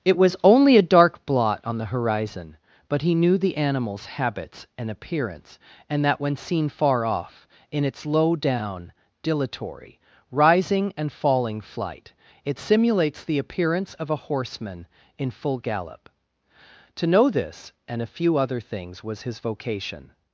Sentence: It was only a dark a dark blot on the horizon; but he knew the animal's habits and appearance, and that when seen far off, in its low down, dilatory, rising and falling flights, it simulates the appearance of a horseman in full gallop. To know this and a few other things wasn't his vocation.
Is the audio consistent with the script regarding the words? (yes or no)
no